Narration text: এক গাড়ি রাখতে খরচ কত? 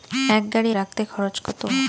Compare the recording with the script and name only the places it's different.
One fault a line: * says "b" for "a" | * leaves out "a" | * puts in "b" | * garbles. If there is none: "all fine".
all fine